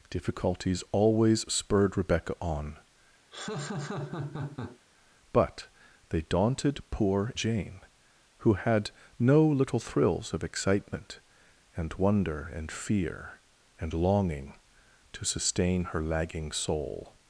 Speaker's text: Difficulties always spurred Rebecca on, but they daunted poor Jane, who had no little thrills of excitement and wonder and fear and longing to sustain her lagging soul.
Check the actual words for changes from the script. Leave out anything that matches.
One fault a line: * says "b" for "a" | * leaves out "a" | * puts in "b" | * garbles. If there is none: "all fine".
all fine